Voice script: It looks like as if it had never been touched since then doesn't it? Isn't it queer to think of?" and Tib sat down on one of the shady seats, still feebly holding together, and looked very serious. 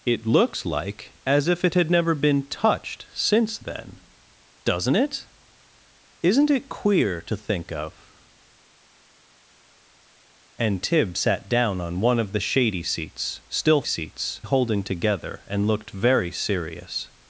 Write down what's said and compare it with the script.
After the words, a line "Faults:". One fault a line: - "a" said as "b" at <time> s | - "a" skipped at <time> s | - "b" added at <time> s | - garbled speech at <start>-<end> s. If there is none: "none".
It looks like as if it had never been touched since then doesn't it? Isn't it queer to think of?" and Tib sat down on one of the shady seats, still seats holding together, and looked very serious.
Faults:
- "feebly" said as "seats" at 13.8 s